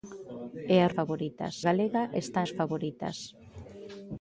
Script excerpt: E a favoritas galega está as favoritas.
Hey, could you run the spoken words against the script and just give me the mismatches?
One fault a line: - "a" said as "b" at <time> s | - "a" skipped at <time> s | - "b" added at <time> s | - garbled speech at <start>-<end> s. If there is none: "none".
none